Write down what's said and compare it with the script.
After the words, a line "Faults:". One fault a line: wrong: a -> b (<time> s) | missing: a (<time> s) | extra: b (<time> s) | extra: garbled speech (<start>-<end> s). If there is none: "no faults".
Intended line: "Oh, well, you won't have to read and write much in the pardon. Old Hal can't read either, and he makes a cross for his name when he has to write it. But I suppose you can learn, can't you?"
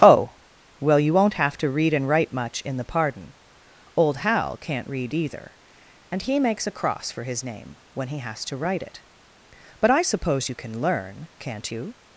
"Oh, well, you won't have to read and write much in the pardon. Old Hal can't read either, and he makes a cross for his name when he has to write it. But I suppose you can learn, can't you?"
Faults:
no faults